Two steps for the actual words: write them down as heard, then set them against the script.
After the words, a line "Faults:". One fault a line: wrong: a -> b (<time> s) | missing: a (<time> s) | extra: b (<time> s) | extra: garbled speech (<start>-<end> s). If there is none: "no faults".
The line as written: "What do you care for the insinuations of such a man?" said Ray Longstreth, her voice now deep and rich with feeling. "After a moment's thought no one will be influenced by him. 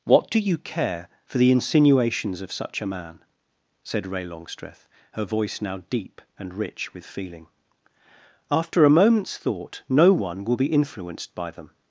"What do you care for the insinuations of such a man?" said Ray Longstreth, her voice now deep and rich with feeling. "After a moment's thought no one will be influenced by them.
Faults:
wrong: him -> them (11.5 s)